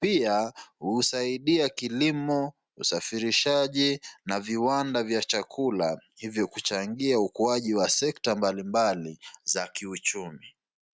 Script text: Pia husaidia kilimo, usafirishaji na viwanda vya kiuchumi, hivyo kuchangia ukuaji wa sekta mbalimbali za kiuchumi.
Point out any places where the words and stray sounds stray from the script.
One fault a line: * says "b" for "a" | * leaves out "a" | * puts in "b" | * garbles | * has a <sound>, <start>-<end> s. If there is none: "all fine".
* says "chakula" for "kiuchumi"